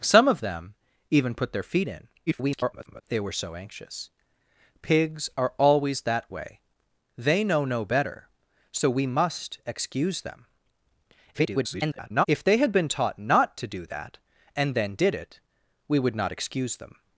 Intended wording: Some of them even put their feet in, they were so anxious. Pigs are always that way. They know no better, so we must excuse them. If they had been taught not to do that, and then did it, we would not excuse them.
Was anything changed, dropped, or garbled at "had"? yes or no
no